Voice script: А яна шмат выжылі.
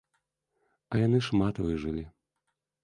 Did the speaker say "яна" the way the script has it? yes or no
no